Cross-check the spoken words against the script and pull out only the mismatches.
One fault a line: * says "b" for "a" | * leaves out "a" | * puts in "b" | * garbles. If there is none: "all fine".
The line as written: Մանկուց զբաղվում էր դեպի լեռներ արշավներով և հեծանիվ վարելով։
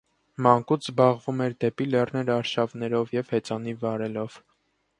all fine